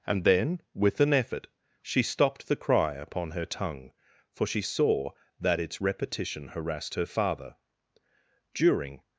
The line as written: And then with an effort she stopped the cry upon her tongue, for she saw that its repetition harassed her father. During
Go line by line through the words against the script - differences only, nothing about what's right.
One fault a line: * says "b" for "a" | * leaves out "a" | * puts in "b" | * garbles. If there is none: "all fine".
all fine